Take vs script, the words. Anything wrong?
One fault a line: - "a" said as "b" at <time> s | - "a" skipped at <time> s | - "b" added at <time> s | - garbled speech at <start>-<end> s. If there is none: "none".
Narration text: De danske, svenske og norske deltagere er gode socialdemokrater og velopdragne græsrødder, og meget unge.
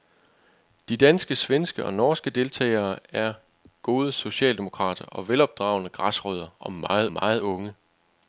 - "meget" added at 7.1 s